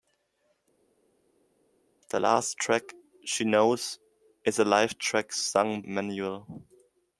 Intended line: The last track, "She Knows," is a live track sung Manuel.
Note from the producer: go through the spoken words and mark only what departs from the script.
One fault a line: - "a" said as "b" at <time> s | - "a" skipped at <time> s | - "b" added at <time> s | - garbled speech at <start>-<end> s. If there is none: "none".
none